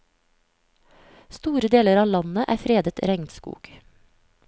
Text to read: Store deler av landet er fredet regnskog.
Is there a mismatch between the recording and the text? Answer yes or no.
no